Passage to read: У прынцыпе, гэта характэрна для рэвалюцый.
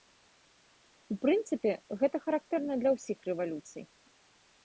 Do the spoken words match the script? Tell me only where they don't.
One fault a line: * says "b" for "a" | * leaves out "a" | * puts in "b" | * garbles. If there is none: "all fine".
* puts in "ўсіх"